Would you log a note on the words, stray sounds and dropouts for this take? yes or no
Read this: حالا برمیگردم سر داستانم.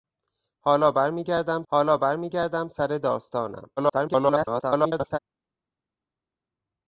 yes